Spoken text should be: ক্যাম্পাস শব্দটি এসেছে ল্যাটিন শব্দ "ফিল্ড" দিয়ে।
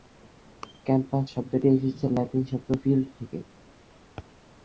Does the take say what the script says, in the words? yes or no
no